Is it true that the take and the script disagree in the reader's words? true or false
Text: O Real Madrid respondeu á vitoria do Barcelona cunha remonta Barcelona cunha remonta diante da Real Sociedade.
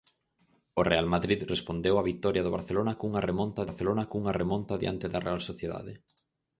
false